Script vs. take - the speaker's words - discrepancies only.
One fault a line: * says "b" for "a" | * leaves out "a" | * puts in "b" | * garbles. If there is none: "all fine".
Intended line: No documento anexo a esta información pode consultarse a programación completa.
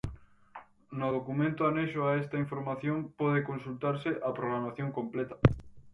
all fine